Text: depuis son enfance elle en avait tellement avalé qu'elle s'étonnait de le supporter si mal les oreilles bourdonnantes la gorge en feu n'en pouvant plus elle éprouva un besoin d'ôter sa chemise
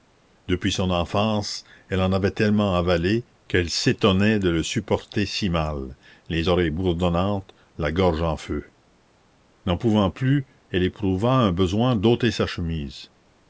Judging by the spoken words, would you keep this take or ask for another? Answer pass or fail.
pass